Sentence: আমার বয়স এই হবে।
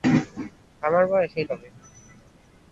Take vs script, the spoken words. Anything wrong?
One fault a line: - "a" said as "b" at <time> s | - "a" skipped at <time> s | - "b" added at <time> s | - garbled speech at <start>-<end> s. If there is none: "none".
none